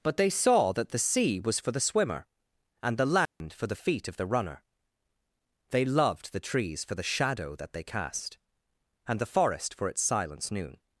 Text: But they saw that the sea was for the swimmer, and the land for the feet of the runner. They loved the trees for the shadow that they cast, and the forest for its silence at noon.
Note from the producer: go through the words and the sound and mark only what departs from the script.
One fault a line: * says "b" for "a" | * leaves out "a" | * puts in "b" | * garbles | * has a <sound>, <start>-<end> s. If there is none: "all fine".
* has a dropout, 3.3-3.4 s
* leaves out "at"